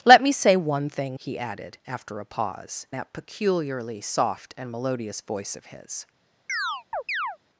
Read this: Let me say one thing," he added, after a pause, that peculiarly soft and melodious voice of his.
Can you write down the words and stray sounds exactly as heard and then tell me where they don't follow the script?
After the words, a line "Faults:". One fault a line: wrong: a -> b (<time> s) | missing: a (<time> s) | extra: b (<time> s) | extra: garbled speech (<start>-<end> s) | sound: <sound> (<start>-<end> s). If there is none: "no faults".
Let me say one thing," he added, after a pause, that peculiarly soft and melodious voice of his.
Faults:
sound: chirp (6.5-7.4 s)